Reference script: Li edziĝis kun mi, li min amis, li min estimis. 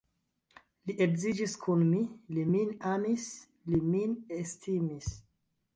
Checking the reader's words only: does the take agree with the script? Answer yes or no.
yes